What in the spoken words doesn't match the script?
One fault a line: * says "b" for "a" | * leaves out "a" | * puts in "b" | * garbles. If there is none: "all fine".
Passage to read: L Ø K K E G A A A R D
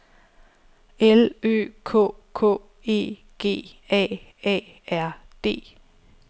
* leaves out "A"